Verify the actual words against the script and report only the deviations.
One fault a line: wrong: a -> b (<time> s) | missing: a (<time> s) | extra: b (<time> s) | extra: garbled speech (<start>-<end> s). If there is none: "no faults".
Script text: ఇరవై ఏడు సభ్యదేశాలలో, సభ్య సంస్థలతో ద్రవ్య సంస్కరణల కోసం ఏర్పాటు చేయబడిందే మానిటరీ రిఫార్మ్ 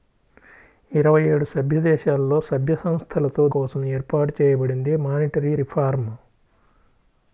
missing: ద్రవ్య సంస్కరణల (3.5 s)